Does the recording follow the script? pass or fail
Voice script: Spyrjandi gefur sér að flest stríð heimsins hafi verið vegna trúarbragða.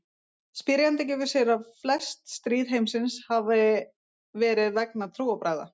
pass